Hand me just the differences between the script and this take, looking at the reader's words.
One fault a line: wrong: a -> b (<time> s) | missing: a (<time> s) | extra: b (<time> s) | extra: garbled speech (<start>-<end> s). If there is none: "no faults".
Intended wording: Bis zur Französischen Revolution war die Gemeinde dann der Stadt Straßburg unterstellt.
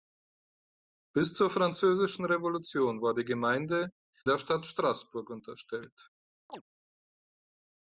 missing: dann (3.9 s)